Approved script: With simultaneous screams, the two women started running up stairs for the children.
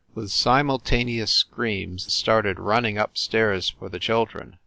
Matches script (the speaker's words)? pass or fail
fail